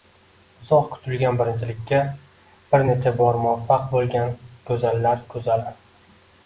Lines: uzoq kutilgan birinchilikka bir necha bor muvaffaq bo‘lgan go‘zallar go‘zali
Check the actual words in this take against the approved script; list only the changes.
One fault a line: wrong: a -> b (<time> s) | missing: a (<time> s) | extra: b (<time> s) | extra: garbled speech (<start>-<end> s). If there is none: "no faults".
no faults